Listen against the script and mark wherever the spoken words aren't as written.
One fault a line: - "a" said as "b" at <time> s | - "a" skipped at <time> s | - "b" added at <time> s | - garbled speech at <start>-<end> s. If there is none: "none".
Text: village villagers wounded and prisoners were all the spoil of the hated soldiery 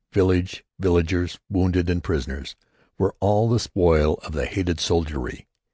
none